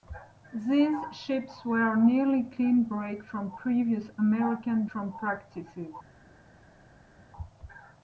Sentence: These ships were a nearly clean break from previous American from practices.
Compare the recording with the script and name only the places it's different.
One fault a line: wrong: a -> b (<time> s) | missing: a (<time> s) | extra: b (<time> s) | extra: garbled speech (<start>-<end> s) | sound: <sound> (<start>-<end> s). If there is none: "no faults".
no faults